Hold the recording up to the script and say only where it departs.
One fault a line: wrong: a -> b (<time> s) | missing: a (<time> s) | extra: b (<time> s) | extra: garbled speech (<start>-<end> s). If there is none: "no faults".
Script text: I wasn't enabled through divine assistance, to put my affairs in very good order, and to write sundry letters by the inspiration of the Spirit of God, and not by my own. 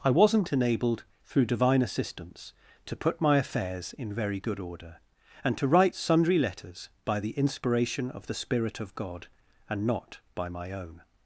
no faults